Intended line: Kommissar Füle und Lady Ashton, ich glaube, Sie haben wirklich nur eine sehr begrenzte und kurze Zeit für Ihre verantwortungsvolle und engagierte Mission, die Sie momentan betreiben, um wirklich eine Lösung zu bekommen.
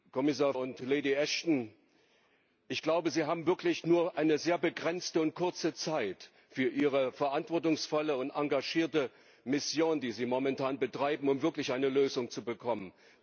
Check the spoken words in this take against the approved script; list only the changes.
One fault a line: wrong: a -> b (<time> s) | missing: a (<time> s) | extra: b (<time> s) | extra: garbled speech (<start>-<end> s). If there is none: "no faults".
missing: Füle (0.5 s)